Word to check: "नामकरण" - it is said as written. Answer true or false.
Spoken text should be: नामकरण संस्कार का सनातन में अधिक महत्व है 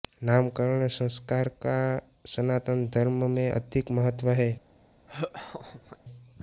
true